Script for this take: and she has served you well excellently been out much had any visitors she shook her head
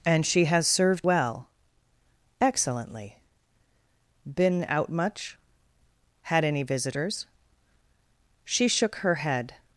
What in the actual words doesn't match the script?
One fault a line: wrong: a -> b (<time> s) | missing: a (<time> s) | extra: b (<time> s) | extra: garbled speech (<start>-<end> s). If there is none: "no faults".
missing: you (1.1 s)